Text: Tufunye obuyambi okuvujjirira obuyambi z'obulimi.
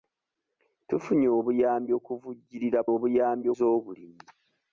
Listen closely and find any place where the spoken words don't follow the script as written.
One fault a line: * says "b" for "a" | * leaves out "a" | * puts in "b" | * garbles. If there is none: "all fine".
all fine